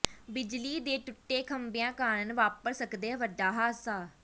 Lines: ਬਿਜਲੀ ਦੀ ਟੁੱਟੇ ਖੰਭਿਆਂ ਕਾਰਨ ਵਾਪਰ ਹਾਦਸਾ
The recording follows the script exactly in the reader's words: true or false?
false